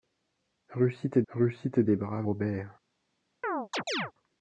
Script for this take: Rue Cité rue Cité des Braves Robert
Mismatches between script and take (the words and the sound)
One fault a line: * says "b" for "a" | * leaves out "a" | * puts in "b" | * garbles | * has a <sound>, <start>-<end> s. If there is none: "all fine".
* has a chirp, 3.4-4.1 s